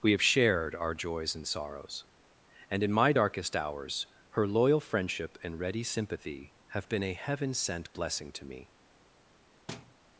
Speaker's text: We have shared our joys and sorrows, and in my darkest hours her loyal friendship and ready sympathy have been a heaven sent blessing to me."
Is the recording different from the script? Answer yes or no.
no